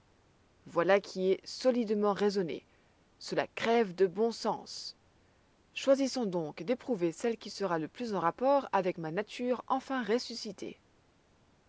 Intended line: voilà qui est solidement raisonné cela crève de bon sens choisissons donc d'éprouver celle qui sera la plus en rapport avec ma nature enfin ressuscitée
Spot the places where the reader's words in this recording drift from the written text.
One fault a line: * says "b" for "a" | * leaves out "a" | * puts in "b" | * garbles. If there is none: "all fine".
* says "le" for "la"